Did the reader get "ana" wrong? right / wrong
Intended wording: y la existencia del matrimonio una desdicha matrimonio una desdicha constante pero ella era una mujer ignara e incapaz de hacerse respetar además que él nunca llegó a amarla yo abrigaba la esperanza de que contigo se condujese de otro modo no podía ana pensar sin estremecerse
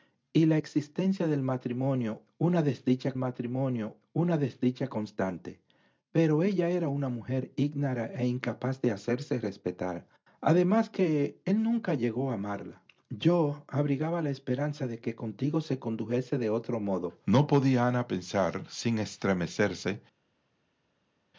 right